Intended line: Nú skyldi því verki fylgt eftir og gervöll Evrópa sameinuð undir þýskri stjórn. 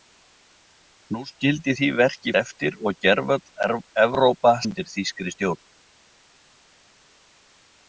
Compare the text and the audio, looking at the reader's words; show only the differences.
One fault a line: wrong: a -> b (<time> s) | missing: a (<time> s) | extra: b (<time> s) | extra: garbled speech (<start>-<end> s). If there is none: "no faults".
missing: fylgt (2.3 s)
missing: sameinuð (4.5 s)